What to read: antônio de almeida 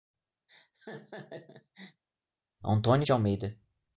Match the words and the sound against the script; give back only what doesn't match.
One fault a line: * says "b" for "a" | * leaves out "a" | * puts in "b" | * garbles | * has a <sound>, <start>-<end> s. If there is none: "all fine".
* has a laugh, 0.5-2.0 s